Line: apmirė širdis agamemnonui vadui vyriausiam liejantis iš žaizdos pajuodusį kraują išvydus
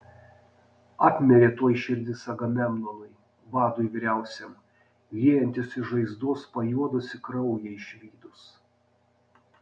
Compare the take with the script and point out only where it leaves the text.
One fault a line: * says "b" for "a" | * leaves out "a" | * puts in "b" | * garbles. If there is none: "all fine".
* puts in "tuoj"